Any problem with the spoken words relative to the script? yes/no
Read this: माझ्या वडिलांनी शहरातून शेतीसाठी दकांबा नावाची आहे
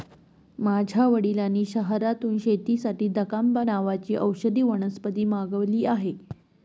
yes